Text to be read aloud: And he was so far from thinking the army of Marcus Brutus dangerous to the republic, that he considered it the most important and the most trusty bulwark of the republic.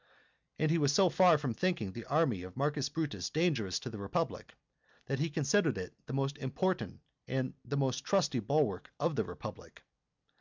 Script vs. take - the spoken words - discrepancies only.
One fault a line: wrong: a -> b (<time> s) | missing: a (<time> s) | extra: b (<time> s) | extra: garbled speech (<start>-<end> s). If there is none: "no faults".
no faults